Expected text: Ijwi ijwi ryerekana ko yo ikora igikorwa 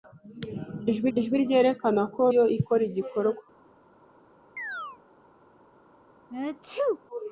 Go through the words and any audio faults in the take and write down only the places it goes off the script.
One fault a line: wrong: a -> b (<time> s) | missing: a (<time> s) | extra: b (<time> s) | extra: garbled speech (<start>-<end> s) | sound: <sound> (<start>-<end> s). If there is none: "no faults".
sound: chirp (4.6-5.0 s)
sound: sneeze (6.3-7.0 s)